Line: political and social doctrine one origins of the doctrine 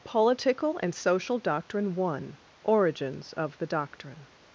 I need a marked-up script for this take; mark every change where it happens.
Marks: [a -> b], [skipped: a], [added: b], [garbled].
political and social doctrine one origins of the doctrine